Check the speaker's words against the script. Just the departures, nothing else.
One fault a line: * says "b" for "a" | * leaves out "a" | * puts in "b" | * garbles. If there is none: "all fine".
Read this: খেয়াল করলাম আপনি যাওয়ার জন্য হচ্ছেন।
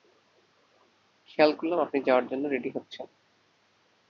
* puts in "রেডি"